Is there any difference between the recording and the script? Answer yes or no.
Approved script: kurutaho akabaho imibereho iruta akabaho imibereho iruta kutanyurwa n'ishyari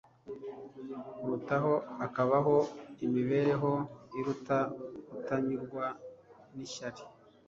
yes